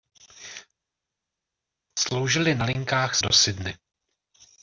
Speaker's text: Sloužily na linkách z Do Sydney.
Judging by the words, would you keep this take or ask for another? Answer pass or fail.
pass